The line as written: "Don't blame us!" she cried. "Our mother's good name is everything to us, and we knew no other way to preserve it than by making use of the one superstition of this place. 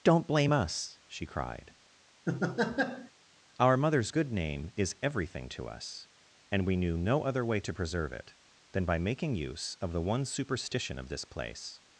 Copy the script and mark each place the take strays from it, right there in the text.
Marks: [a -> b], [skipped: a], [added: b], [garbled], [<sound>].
"Don't blame us!" she cried. [laugh] "Our mother's good name is everything to us, and we knew no other way to preserve it than by making use of the one superstition of this place.